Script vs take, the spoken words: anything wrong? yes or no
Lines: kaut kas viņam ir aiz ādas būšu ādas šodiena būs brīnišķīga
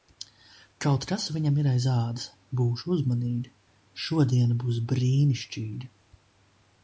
yes